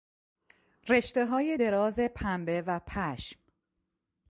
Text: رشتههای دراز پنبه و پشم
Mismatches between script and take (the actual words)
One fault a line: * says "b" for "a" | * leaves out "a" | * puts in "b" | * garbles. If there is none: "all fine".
all fine